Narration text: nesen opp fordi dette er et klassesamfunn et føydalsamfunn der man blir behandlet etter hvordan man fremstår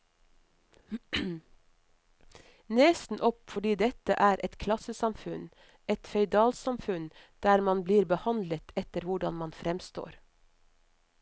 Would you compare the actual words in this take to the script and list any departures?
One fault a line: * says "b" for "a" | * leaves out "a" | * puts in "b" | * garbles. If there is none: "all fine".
all fine